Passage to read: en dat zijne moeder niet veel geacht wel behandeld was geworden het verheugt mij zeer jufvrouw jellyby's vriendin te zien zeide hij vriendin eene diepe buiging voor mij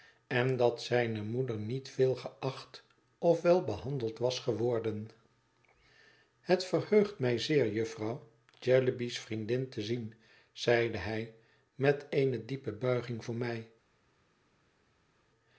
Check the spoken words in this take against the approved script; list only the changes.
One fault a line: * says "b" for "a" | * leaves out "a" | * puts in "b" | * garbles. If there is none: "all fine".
* puts in "of"
* says "met" for "vriendin"